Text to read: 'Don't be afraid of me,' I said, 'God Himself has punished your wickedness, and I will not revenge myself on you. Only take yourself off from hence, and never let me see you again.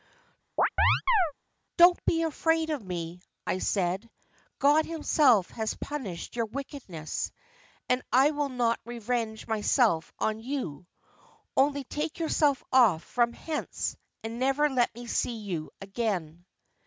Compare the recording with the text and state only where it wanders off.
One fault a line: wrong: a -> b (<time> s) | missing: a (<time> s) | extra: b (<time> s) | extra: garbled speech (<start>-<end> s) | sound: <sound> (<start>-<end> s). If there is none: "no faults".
sound: chirp (0.6-1.3 s)